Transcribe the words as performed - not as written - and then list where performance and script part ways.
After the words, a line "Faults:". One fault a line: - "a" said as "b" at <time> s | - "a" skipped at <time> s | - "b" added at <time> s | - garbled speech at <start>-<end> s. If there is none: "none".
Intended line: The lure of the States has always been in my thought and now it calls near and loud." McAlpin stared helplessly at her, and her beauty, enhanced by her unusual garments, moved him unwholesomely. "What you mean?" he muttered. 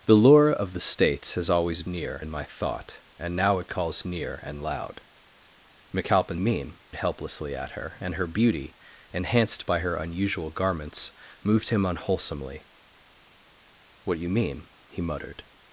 The lure of the States has always near in my thought and now it calls near and loud." McAlpin mean helplessly at her, and her beauty, enhanced by her unusual garments, moved him unwholesomely. "What you mean?" he muttered.
Faults:
- "been" said as "near" at 1.9 s
- "stared" said as "mean" at 6.4 s